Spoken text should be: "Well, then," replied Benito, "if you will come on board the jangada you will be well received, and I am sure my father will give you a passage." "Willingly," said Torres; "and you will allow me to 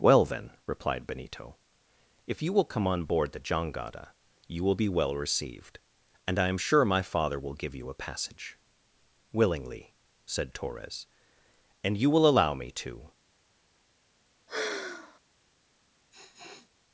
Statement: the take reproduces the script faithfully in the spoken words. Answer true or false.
true